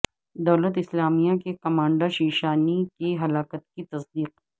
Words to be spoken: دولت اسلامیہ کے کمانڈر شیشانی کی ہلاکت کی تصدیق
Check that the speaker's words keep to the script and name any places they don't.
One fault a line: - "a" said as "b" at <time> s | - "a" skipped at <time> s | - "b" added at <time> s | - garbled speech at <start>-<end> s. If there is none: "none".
none